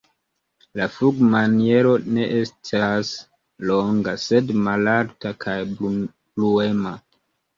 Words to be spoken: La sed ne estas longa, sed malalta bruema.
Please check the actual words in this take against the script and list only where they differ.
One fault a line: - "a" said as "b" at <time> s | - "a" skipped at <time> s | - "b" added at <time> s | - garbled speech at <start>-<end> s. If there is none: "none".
- "sed" said as "flugmaniero" at 0.9 s
- "kaj" added at 5.5 s